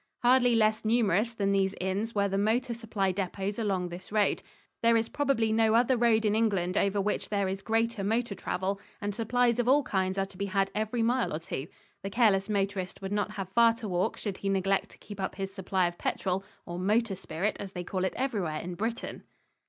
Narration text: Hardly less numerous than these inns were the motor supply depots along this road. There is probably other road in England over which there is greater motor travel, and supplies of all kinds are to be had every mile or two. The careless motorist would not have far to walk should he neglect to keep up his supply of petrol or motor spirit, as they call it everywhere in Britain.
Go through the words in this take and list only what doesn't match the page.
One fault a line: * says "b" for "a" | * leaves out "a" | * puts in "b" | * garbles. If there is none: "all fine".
* puts in "no"